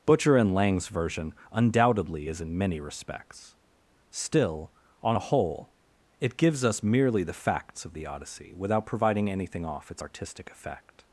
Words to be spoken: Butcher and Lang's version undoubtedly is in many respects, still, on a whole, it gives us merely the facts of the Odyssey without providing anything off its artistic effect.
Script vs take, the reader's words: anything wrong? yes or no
no